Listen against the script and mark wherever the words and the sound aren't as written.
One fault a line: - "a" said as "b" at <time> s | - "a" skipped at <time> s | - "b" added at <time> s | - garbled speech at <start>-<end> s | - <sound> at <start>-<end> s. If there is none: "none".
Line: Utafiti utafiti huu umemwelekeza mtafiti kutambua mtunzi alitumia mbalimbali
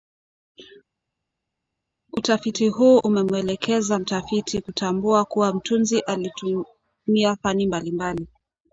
- "utafiti" skipped at 2.7 s
- "kuwa" added at 5.2 s
- "fani" added at 7.4 s